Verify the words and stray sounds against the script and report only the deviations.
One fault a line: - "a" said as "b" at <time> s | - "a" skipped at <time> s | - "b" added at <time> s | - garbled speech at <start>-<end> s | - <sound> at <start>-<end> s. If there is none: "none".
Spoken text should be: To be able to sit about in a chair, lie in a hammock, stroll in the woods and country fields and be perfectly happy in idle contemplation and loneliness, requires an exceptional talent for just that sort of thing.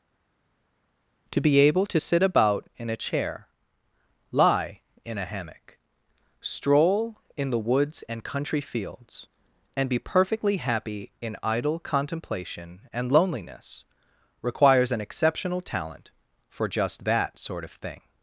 none